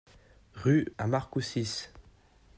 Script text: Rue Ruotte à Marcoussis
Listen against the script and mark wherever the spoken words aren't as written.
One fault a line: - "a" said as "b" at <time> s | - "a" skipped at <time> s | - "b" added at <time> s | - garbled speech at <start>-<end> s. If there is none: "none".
- "Ruotte" skipped at 0.9 s